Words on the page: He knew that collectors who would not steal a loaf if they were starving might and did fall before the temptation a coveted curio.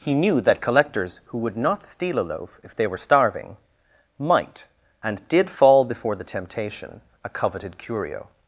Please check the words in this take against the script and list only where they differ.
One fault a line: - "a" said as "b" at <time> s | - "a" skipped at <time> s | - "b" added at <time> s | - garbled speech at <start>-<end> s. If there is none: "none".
none